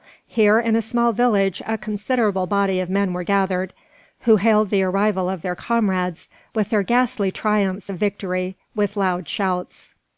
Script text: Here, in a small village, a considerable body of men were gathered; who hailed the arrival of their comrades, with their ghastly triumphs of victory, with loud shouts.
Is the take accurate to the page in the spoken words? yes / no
yes